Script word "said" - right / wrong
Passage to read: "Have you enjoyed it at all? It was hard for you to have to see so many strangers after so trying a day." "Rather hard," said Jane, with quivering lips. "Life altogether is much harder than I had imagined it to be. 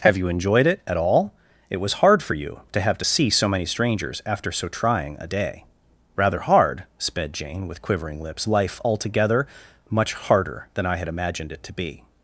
wrong